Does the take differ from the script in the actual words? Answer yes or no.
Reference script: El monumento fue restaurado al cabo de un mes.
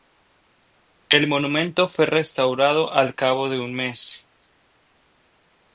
no